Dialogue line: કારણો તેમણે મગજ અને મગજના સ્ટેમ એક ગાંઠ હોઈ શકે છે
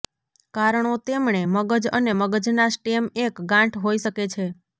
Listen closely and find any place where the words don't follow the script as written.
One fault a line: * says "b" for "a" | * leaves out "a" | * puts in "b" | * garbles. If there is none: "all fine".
all fine